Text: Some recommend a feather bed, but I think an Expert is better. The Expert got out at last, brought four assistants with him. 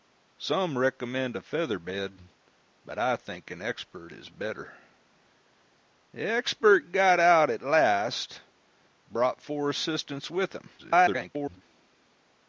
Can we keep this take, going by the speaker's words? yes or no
no